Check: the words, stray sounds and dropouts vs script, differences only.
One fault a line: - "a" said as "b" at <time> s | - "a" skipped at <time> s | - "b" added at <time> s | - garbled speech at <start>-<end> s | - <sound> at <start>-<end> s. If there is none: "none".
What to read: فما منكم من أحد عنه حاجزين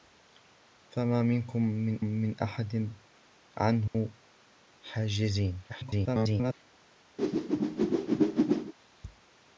- "من" added at 2.0 s
- dropout at 3.9-3.9 s
- garbled speech at 5.7-6.5 s
- whoosh at 7.2-8.7 s